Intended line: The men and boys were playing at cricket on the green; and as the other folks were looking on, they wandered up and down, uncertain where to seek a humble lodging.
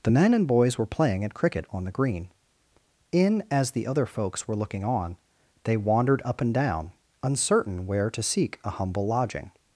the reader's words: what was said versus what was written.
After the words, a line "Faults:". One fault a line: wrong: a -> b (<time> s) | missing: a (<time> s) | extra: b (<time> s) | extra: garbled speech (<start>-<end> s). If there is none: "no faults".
The men and boys were playing at cricket on the green; in as the other folks were looking on, they wandered up and down, uncertain where to seek a humble lodging.
Faults:
wrong: and -> in (3.1 s)